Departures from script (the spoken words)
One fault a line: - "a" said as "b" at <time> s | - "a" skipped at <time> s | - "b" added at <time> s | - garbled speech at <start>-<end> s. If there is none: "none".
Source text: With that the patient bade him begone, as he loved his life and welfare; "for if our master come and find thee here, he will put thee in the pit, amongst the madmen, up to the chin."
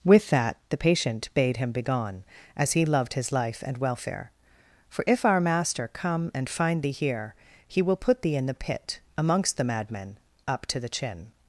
none